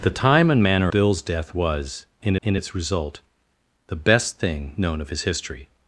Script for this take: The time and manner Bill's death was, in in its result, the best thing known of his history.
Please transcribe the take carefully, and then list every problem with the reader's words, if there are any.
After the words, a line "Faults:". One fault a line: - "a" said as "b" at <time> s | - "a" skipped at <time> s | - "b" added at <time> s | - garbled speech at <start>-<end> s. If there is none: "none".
The time and manner Bill's death was, in in its result, the best thing known of his history.
Faults:
none